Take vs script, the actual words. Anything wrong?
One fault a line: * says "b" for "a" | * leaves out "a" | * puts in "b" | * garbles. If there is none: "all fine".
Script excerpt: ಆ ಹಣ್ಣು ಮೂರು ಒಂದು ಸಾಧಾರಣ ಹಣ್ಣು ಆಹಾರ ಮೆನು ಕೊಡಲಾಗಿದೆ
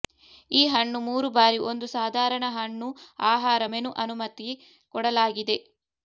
* says "ಈ" for "ಆ"
* puts in "ಬಾರಿ"
* puts in "ಅನುಮತಿ"